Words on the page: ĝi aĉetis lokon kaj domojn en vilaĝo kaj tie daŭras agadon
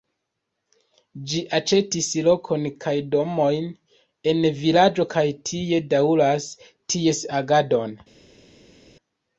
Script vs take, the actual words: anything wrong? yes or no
yes